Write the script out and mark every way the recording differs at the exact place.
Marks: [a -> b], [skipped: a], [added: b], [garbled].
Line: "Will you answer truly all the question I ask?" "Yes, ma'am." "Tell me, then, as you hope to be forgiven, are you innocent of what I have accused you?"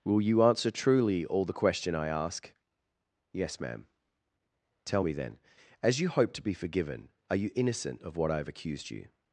"Will you answer truly all the question I ask?" "Yes, ma'am." "Tell me, then, as you hope to be forgiven, are you innocent of what I have accused you?"